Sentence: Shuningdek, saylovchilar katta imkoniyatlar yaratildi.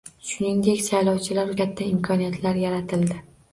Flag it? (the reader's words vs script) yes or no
no